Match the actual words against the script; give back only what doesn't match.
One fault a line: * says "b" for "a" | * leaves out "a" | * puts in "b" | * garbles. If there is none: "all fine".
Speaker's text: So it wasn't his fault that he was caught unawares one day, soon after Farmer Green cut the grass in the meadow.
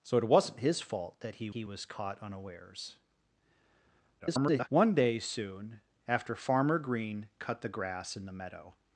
* puts in "he"
* garbles